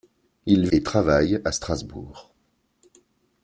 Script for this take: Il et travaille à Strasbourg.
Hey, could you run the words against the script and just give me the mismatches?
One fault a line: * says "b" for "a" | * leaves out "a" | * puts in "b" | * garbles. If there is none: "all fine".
all fine